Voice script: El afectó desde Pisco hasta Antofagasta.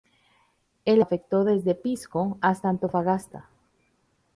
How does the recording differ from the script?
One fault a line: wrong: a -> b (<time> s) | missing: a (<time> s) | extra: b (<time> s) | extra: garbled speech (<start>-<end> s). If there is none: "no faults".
no faults